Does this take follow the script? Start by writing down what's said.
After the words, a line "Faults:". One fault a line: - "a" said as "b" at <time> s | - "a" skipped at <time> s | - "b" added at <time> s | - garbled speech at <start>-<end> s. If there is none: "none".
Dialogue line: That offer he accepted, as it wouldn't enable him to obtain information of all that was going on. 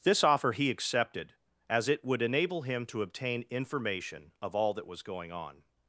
This offer he accepted, as it would enable him to obtain information of all that was going on.
Faults:
- "That" said as "This" at 0.0 s
- "wouldn't" said as "would" at 2.0 s